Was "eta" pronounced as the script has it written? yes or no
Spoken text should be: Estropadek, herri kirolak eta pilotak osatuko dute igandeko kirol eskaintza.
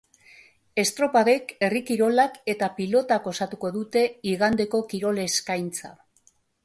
yes